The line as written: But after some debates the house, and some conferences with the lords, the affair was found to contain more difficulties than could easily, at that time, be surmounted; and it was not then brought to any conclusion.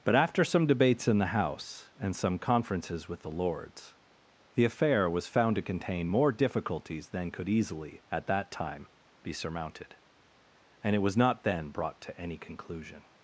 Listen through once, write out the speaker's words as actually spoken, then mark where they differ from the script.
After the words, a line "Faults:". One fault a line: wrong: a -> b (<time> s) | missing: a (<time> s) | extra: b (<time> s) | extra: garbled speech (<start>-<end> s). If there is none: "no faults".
But after some debates in the house, and some conferences with the lords, the affair was found to contain more difficulties than could easily, at that time, be surmounted; and it was not then brought to any conclusion.
Faults:
extra: in (1.1 s)